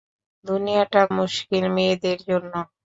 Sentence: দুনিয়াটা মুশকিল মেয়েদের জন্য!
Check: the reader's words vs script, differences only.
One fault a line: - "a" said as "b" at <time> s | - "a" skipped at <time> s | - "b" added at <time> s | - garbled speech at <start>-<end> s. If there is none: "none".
none